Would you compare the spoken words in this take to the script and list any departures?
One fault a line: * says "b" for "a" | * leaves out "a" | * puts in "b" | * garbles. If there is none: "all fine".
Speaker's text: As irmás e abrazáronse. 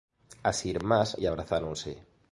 all fine